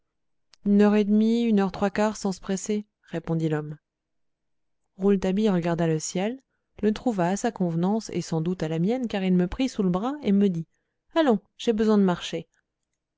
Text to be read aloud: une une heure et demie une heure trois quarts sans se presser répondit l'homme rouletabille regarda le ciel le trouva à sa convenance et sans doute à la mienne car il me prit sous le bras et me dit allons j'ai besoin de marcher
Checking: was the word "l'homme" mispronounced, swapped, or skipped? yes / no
no